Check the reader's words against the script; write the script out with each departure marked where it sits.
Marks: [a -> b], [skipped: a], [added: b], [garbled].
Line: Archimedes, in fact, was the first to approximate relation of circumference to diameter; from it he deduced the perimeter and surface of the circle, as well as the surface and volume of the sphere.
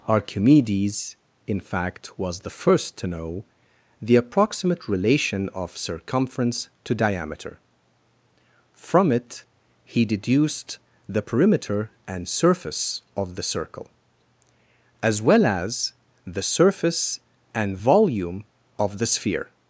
Archimedes, in fact, was the first to [added: know the] approximate relation of circumference to diameter; from it he deduced the perimeter and surface of the circle, as well as the surface and volume of the sphere.